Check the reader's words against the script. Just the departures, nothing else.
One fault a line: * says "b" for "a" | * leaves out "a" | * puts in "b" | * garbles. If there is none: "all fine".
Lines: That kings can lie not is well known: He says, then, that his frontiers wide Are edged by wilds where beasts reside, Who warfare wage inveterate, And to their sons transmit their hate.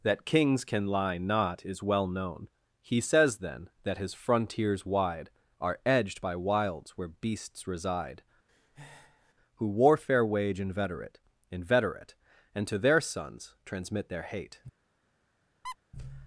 * puts in "inveterate"